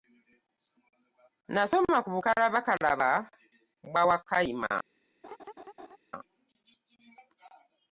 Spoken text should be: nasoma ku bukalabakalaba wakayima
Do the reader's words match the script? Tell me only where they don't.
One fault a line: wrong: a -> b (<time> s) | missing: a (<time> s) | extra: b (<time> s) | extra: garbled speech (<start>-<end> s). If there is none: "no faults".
extra: bwa (3.9 s)